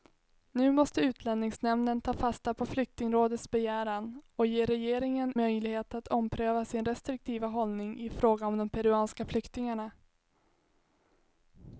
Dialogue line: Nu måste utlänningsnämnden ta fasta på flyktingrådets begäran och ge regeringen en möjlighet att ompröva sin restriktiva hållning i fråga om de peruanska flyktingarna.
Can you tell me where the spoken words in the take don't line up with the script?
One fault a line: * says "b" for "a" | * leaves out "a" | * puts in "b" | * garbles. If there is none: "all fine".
* leaves out "en"